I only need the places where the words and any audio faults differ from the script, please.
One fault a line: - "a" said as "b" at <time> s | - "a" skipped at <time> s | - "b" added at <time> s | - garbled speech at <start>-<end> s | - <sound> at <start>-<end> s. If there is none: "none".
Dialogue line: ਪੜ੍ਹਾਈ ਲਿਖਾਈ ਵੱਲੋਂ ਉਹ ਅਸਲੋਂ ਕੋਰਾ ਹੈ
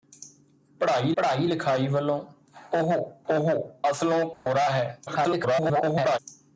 - "ਪੜ੍ਹਾਈ" added at 1.2 s
- "ਉਹ" added at 3.3 s
- dropout at 4.3-4.5 s
- garbled speech at 5.1-6.2 s